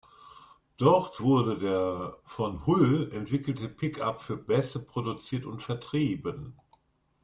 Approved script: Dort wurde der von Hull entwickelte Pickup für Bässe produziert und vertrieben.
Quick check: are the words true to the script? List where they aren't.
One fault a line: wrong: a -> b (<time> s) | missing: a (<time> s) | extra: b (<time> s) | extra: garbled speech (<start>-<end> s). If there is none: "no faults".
no faults